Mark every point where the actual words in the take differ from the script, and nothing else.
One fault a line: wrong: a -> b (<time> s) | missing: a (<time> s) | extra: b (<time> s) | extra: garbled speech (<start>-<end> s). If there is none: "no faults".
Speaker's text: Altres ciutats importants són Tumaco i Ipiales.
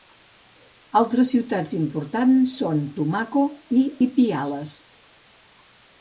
no faults